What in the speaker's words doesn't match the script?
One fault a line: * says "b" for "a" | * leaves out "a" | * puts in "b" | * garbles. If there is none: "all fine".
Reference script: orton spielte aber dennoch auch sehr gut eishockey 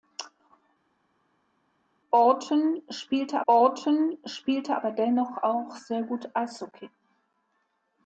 * puts in "orton spielte"